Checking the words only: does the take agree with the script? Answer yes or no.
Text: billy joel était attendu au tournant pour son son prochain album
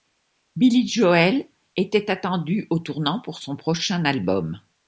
no